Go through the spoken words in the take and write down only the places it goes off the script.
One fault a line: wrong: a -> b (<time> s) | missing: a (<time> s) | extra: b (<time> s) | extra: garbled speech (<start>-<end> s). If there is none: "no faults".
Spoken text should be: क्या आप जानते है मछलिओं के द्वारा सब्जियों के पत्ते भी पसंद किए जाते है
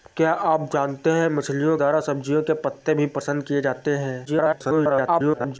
missing: के (1.8 s)
extra: garbled speech (4.2-5.6 s)